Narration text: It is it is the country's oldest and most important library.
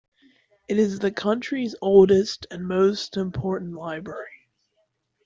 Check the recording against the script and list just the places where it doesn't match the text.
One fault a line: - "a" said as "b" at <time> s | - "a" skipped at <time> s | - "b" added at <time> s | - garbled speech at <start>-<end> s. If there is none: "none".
- "it is" skipped at 1.0 s